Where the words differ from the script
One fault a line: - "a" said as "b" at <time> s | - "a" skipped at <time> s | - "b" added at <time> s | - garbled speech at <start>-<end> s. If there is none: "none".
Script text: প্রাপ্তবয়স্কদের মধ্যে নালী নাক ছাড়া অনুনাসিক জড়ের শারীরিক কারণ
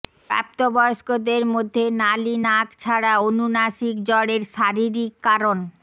none